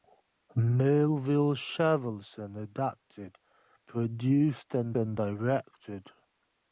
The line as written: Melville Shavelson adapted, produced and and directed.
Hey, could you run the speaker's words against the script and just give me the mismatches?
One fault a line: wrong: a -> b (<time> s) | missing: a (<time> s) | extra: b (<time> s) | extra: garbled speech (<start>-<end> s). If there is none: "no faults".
no faults